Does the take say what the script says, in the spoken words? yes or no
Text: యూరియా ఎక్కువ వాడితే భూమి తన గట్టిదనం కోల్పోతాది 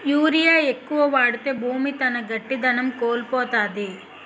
yes